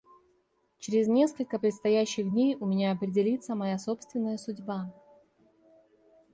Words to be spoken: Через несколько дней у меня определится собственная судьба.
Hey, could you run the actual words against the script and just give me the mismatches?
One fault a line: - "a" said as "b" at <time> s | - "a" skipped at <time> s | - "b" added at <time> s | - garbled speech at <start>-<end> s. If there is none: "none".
- "предстоящих" added at 1.6 s
- "моя" added at 3.6 s